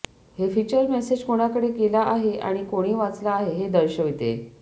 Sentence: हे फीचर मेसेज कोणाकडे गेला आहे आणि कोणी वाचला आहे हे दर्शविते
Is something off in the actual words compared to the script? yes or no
no